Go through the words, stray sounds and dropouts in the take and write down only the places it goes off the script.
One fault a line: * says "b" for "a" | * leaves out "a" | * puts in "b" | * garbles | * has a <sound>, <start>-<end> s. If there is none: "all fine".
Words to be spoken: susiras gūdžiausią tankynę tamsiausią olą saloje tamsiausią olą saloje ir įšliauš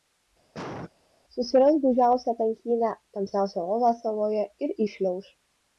* has a cough, 0.5-0.9 s
* leaves out "tamsiausią olą saloje"